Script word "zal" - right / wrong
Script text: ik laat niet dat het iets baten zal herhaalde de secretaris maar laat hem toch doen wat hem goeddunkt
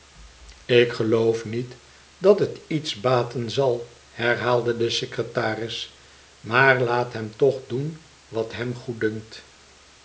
right